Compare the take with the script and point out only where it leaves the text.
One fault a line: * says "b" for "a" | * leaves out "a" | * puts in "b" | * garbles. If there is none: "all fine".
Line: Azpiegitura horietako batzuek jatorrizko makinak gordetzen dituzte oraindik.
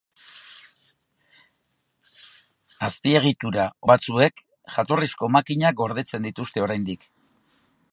* leaves out "horietako"